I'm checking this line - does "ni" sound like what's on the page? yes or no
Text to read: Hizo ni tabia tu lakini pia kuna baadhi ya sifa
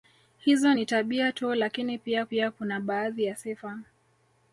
yes